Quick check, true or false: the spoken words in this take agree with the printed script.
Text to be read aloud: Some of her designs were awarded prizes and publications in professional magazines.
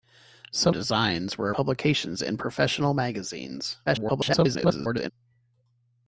false